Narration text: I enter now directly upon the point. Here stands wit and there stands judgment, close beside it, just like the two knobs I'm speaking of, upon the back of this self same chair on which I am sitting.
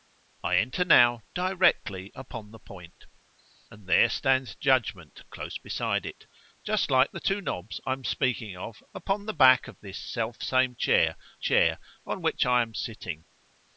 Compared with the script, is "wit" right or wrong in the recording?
wrong